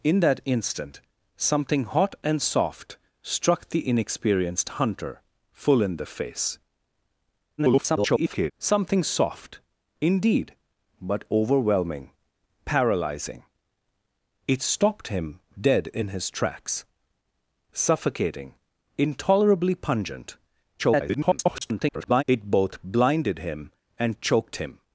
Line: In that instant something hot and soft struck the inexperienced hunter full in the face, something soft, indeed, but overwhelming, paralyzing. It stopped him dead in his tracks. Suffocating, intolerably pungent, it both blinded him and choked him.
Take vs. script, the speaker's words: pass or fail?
fail